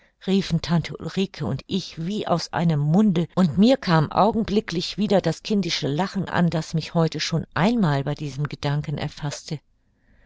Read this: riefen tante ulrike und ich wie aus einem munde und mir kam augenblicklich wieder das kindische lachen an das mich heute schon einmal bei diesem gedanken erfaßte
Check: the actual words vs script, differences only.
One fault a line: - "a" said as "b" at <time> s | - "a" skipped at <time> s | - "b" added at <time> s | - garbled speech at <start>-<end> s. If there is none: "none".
none